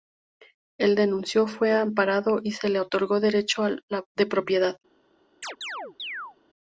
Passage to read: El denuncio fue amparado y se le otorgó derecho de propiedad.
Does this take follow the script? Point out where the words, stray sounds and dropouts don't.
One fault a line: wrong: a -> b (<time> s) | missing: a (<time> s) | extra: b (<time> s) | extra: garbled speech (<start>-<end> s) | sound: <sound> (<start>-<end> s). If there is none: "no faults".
sound: chirp (5.4-6.4 s)